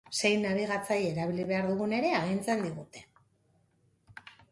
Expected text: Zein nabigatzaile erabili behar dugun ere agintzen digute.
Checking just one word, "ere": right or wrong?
right